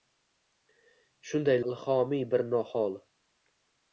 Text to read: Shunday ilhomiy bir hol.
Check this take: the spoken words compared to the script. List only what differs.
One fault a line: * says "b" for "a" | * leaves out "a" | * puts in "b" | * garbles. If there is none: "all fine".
all fine